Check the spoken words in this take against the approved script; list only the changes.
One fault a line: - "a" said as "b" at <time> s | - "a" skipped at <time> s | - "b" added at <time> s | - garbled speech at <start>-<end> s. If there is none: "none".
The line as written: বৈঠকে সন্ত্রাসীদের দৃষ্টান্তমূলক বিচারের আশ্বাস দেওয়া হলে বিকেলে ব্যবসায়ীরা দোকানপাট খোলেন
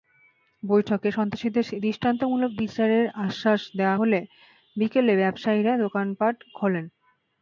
none